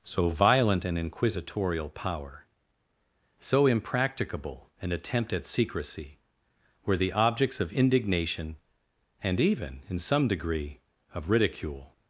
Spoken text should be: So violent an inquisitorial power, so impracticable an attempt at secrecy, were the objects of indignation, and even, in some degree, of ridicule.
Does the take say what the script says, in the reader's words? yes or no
yes